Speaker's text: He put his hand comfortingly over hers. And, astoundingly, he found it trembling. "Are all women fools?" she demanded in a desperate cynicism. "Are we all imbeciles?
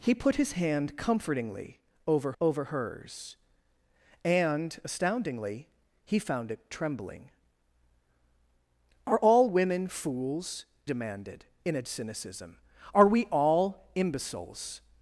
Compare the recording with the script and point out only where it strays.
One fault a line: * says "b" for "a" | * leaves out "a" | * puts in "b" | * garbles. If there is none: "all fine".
* puts in "over"
* leaves out "she"
* leaves out "desperate"